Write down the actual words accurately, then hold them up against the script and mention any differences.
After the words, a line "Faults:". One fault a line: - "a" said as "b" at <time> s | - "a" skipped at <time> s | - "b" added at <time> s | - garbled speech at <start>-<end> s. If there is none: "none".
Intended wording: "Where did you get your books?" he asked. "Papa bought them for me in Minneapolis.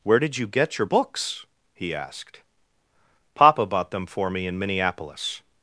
"Where did you get your books?" he asked. "Papa bought them for me in Minneapolis.
Faults:
none